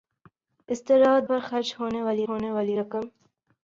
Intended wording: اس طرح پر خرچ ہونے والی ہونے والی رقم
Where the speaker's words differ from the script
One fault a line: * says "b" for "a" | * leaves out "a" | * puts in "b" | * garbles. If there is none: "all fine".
all fine